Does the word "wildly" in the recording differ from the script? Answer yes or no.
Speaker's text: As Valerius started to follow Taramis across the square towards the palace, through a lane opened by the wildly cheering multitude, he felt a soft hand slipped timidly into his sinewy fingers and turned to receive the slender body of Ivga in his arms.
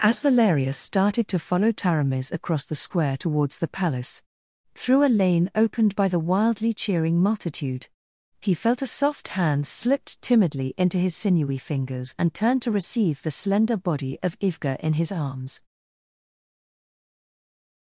no